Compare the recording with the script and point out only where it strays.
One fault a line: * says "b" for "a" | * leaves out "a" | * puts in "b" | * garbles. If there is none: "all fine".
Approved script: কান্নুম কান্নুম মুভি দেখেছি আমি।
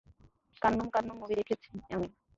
all fine